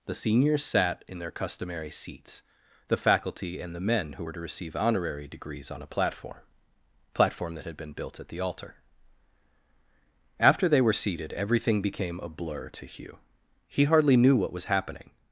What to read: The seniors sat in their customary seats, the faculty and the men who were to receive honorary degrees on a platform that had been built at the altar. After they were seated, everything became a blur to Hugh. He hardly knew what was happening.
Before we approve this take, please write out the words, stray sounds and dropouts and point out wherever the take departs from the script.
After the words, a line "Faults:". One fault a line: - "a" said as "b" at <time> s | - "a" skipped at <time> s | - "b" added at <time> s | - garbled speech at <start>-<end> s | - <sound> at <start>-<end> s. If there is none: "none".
The seniors sat in their customary seats, the faculty and the men who were to receive honorary degrees on a platform platform that had been built at the altar. After they were seated, everything became a blur to Hugh. He hardly knew what was happening.
Faults:
- "platform" added at 7.1 s